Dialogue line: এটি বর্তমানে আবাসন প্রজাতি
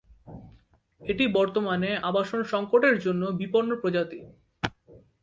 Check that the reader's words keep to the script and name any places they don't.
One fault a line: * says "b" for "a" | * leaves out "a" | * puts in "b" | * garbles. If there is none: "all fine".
* puts in "সংকটের জন্য বিপন্ন"